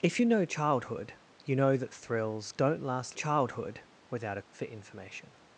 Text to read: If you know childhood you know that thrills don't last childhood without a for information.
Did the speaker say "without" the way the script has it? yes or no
yes